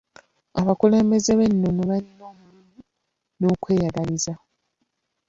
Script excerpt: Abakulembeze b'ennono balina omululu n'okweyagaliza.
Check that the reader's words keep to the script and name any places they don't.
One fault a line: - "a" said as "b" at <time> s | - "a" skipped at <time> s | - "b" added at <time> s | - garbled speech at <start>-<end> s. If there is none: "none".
none